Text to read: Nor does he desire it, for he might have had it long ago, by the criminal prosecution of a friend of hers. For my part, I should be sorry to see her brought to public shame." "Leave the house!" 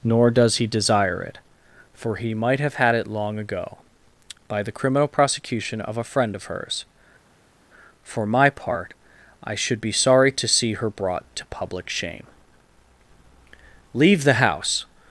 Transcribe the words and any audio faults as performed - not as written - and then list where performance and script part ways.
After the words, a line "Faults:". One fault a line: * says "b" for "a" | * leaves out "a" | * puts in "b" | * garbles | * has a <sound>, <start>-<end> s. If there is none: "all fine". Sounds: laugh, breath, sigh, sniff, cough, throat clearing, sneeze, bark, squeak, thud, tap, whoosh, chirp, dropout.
Nor does he desire it, for he might have had it long ago, by the criminal prosecution of a friend of hers. For my part, I should be sorry to see her brought to public shame." "Leave the house!"
Faults:
all fine